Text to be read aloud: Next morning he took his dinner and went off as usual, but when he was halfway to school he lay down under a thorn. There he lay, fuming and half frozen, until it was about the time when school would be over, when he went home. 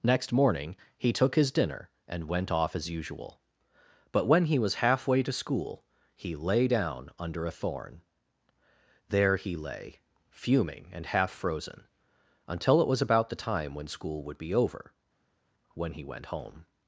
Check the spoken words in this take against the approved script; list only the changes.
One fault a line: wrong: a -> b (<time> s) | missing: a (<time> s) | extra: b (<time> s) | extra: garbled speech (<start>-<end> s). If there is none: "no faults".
no faults